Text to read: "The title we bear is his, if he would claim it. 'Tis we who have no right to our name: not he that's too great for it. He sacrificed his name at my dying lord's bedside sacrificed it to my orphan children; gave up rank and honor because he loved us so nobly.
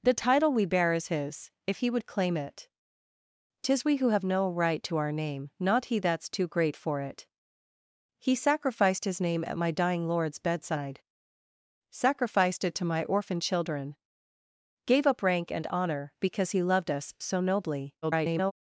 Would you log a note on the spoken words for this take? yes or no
yes